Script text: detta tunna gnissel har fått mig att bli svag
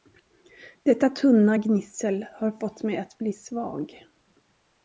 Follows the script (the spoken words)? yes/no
yes